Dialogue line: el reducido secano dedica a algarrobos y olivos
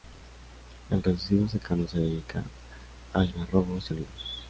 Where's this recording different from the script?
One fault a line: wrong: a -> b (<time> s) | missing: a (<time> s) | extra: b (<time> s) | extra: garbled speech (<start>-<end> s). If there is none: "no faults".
extra: se (1.9 s)